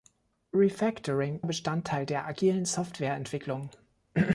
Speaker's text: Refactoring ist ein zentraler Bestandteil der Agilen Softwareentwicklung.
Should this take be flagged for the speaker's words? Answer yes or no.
yes